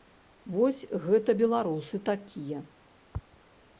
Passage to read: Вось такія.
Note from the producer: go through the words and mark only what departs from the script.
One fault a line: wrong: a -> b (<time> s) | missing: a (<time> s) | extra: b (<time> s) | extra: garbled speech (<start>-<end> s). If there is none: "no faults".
extra: гэта беларусы (1.0 s)